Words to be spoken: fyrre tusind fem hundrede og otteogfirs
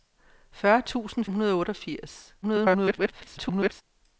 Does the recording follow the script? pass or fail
fail